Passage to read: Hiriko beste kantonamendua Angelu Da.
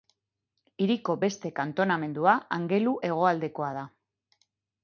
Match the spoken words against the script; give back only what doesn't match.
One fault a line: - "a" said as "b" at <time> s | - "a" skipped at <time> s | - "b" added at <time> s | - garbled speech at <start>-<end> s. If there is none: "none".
- "Hegoaldekoa" added at 3.1 s